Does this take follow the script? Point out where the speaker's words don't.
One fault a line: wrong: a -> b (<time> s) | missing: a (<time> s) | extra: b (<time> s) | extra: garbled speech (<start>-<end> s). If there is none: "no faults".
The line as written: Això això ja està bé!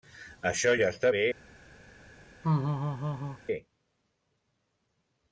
missing: això (0.7 s)